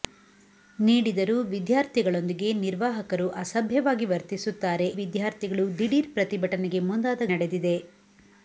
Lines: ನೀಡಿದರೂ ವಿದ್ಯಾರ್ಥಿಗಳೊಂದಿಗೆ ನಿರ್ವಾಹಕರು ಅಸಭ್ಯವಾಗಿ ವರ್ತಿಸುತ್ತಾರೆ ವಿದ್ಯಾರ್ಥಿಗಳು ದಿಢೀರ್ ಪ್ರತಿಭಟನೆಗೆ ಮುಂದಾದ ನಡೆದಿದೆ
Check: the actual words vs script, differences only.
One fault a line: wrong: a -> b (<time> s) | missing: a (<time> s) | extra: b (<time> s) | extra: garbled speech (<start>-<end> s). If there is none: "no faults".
no faults